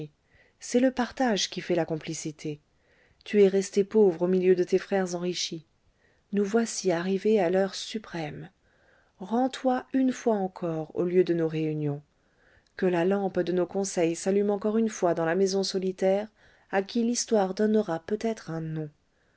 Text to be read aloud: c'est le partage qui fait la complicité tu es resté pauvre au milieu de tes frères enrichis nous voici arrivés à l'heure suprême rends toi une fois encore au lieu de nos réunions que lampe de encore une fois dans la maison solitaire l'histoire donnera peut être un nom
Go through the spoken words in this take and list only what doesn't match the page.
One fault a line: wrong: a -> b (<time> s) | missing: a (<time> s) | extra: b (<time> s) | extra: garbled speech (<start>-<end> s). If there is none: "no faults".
extra: la (12.9 s)
extra: nos conseils s'allume (13.5 s)
extra: à qui (16.7 s)